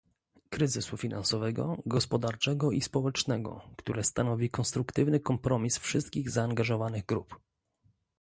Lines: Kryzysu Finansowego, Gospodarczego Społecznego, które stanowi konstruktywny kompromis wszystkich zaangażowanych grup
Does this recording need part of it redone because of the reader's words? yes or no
yes